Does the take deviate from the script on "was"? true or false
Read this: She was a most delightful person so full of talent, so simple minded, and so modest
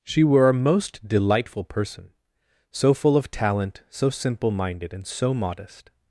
true